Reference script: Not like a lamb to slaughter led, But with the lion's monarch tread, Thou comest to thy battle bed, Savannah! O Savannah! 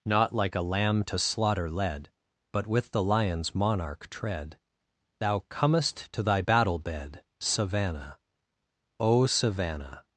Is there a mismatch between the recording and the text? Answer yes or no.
no